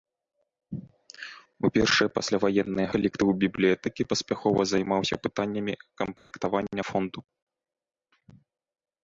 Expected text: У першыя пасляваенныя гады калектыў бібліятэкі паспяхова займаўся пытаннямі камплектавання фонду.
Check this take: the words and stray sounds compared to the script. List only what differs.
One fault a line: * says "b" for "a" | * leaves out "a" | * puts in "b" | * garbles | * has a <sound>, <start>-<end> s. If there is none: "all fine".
* leaves out "гады"
* has a dropout, 6.2-6.3 s